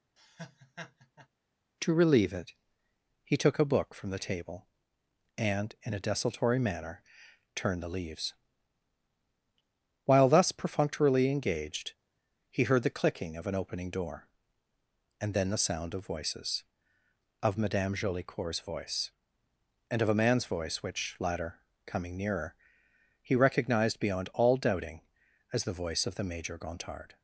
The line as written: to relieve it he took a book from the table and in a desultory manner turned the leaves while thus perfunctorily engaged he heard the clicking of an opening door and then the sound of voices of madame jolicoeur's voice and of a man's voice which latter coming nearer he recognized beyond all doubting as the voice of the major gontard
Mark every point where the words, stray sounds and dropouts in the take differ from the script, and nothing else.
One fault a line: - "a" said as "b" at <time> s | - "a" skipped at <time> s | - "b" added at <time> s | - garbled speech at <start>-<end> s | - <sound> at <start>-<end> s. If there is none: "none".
- laugh at 0.2-1.3 s